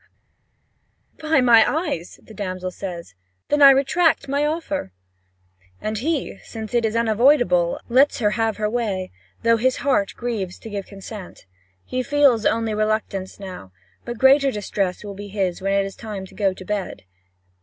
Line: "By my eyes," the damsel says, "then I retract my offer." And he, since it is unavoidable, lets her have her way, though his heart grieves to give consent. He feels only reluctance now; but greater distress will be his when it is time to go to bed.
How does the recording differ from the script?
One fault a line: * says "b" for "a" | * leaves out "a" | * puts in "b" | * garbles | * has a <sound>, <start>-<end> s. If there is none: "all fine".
all fine